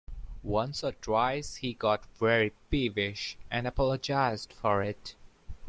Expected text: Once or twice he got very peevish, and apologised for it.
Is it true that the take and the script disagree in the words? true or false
false